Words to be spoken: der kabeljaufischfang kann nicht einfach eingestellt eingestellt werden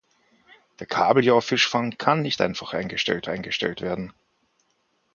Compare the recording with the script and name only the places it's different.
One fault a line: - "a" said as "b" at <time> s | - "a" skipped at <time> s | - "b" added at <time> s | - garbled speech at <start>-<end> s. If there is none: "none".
none